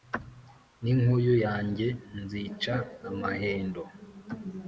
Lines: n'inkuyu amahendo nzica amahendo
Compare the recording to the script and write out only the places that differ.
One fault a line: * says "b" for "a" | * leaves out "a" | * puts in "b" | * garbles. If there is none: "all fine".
* says "yanjye" for "amahendo"